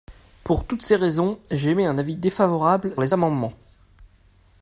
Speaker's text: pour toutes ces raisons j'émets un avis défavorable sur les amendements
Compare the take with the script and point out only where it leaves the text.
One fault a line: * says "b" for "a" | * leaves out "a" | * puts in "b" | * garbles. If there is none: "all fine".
* leaves out "sur"